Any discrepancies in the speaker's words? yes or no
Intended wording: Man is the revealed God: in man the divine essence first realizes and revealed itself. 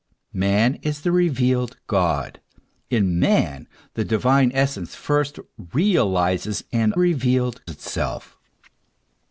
no